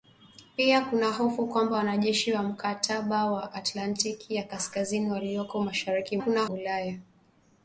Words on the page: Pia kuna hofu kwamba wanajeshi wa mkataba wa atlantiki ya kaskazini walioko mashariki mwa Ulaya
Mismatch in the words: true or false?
true